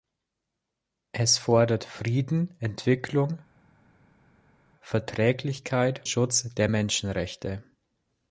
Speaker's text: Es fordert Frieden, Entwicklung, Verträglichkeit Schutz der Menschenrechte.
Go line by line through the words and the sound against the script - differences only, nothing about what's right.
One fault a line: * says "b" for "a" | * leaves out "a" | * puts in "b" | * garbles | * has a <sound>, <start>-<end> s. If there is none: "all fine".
all fine